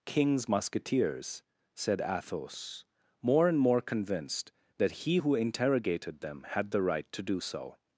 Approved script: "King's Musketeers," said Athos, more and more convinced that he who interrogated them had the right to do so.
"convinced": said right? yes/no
yes